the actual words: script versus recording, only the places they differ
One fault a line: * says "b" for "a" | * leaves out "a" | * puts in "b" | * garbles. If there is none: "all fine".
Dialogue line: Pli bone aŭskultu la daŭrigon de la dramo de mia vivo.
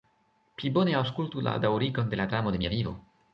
all fine